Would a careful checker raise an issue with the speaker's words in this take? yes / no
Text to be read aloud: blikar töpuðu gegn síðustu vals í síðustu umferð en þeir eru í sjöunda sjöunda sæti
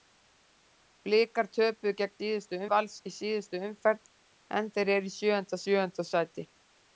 no